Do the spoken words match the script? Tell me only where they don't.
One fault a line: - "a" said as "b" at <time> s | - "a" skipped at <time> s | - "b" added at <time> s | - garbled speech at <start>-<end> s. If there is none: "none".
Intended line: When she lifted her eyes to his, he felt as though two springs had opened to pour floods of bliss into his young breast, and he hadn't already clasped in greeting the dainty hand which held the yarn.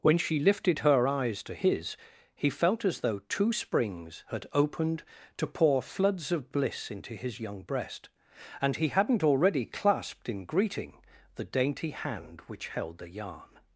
none